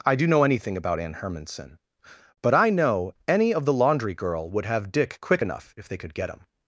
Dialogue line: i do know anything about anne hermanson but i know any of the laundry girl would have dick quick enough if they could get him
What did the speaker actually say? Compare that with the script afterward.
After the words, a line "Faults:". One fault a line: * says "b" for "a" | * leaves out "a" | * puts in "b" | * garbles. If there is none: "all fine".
i do know anything about anne hermanson but i know any of the laundry girl would have dick quick enough if they could get him
Faults:
all fine